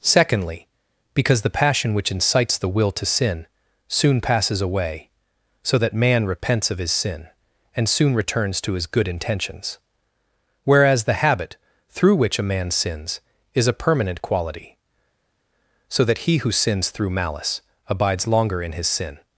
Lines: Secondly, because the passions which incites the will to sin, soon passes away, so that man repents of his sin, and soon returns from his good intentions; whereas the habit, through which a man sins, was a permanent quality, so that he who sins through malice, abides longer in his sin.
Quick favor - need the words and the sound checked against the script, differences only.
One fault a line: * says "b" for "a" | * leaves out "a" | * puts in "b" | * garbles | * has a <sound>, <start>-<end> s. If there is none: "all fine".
* says "passion" for "passions"
* says "to" for "from"
* says "is" for "was"